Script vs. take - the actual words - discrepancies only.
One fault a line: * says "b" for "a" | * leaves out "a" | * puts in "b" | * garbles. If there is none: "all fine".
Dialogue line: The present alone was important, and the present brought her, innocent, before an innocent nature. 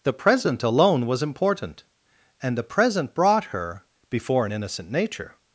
* leaves out "innocent"